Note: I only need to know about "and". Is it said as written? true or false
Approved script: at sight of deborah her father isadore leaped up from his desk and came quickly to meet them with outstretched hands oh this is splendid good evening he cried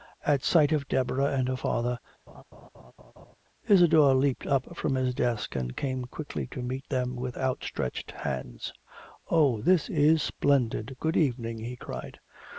true